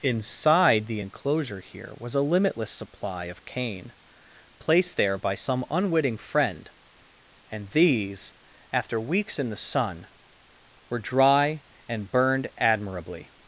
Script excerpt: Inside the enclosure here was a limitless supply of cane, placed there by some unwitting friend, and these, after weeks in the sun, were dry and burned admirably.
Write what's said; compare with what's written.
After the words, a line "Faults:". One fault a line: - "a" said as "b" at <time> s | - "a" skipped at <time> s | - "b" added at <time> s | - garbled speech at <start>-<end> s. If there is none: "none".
Inside the enclosure here was a limitless supply of cane, placed there by some unwitting friend, and these, after weeks in the sun, were dry and burned admirably.
Faults:
none